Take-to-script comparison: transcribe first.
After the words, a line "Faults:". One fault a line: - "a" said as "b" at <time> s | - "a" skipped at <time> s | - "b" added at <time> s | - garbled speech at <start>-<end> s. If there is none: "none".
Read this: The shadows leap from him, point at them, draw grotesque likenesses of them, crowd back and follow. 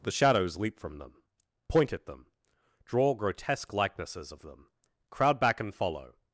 The shadows leap from them, point at them, draw grotesque likenesses of them, crowd back and follow.
Faults:
- "him" said as "them" at 1.0 s